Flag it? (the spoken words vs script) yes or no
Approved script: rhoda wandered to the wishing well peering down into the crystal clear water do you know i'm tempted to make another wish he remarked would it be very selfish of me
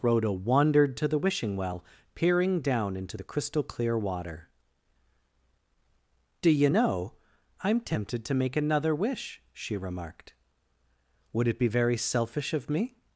yes